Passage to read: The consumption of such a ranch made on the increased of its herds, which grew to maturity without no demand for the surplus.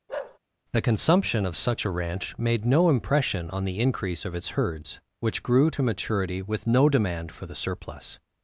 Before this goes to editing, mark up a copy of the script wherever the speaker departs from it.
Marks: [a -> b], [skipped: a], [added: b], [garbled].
The consumption of such a ranch made [added: no impression] on the [increased -> increase] of its herds, which grew to maturity [without -> with] no demand for the surplus.